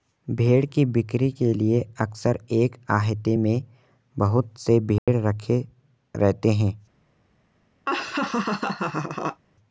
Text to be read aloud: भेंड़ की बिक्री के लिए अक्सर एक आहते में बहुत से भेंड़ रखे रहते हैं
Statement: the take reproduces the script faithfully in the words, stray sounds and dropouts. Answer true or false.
false